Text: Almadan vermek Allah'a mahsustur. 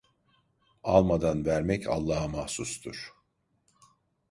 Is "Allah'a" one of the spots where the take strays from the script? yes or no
no